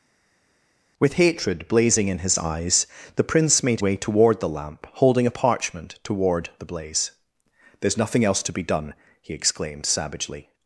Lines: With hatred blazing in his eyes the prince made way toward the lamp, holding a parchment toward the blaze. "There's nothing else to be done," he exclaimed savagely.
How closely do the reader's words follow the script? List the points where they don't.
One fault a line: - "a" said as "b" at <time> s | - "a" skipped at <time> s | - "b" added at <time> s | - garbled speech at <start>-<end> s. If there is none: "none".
none